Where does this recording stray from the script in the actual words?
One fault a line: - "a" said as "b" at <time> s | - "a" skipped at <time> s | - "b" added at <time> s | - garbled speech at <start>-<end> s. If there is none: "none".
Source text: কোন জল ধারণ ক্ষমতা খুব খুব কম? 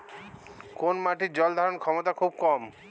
- "মাটির" added at 1.0 s
- "খুব" skipped at 2.3 s